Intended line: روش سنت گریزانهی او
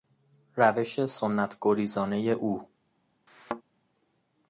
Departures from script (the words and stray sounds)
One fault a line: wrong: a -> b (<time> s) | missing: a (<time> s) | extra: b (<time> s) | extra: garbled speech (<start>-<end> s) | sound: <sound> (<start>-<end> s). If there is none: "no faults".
sound: thud (3.3-3.6 s)